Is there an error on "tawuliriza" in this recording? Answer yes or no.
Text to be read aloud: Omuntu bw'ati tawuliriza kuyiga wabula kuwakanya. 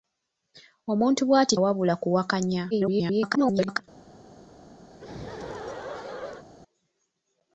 yes